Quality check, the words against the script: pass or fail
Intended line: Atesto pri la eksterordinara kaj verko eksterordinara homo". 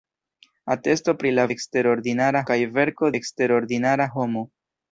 pass